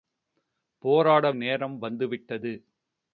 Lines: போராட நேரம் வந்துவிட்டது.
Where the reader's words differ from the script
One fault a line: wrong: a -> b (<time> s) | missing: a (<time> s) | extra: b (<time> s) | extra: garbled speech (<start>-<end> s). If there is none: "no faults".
no faults